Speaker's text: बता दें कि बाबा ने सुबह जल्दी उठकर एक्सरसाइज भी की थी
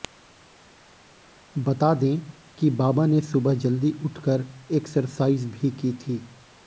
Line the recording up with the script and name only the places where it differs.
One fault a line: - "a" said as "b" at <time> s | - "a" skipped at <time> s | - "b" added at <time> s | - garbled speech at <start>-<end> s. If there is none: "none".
none